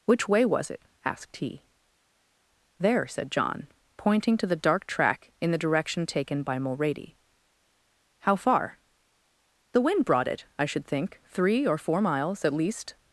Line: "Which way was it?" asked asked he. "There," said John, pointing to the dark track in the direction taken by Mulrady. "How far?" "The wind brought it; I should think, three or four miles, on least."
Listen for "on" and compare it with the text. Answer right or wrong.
wrong